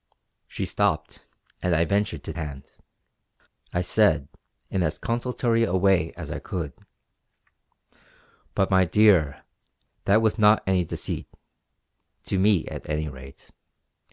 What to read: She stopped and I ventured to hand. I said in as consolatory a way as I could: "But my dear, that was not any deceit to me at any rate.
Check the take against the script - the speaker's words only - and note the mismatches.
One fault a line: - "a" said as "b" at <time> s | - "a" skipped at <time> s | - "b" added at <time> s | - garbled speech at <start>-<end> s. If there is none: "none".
none